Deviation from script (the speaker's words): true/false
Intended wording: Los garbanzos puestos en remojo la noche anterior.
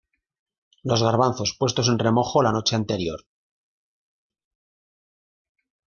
false